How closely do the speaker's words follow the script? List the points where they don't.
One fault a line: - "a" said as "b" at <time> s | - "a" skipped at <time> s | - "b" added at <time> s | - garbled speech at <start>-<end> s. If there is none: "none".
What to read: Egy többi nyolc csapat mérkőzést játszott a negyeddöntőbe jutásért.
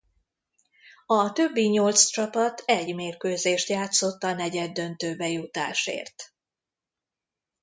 - "Egy" said as "A" at 1.1 s
- "egy" added at 2.6 s